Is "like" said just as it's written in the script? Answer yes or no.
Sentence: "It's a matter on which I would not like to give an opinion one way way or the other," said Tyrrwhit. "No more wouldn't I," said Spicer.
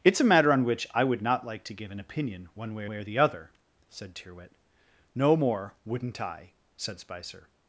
yes